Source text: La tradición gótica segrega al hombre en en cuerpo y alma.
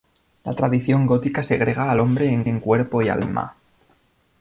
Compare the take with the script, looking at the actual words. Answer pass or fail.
pass